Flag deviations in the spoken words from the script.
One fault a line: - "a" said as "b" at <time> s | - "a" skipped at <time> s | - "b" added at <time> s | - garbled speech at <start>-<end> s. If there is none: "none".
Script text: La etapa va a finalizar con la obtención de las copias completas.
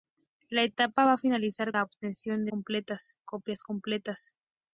- "con" skipped at 1.8 s
- "las" said as "completas" at 2.5 s